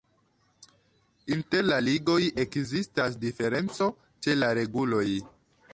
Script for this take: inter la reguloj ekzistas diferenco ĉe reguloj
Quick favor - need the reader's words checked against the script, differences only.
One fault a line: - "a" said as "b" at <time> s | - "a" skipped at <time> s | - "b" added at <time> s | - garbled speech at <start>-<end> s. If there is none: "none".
- "reguloj" said as "ligoj" at 1.9 s
- "la" added at 4.4 s